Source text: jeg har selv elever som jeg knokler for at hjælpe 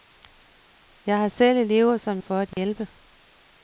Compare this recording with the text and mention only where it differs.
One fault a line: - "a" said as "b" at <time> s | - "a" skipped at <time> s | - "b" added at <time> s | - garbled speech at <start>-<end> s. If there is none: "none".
- "jeg knokler" skipped at 2.2 s